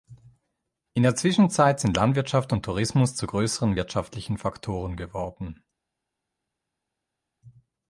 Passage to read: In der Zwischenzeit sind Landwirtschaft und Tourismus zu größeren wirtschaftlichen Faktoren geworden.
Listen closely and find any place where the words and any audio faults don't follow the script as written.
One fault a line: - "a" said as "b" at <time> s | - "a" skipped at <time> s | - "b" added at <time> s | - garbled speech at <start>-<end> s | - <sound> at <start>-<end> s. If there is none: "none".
none